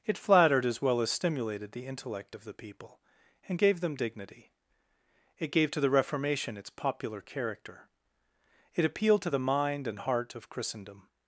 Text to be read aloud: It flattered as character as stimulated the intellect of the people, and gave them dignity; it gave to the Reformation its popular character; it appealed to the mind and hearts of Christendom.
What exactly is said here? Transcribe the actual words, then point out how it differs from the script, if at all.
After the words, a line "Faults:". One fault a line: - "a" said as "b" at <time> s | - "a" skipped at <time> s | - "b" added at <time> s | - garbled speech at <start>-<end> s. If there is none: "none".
It flattered as well as stimulated the intellect of the people, and gave them dignity; it gave to the Reformation its popular character; it appealed to the mind and heart of Christendom.
Faults:
- "character" said as "well" at 0.8 s
- "hearts" said as "heart" at 10.0 s